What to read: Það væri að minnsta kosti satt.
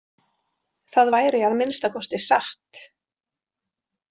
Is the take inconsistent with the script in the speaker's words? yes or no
no